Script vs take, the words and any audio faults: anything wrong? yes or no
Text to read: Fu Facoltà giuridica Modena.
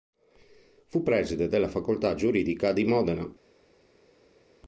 yes